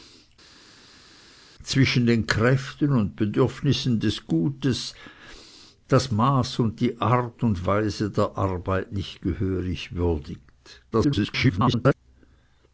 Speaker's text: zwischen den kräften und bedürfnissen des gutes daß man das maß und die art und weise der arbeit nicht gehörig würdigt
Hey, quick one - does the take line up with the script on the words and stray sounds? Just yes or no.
no